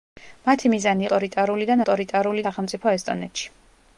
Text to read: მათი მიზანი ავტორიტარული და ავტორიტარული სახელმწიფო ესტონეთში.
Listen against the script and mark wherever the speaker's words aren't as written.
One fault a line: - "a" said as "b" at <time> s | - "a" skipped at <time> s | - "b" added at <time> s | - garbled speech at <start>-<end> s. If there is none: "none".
none